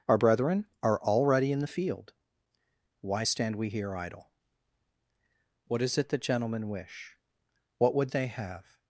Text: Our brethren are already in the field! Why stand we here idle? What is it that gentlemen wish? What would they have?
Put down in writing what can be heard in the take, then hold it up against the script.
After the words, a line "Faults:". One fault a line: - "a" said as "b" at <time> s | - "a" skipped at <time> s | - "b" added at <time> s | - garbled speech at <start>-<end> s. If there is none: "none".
Our brethren are already in the field! Why stand we here idle? What is it that gentlemen wish? What would they have?
Faults:
none